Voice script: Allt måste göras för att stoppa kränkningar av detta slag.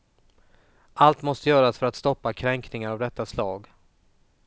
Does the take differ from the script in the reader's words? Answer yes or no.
no